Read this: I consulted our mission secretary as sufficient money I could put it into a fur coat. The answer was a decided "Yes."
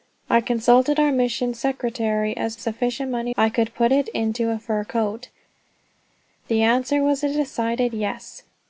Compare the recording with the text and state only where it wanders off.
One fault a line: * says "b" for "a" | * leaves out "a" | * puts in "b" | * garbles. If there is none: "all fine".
all fine